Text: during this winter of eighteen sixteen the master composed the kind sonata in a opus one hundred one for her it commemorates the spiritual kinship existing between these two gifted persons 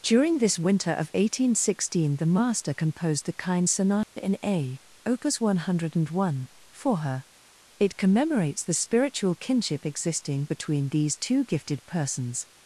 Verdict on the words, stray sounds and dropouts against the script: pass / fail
fail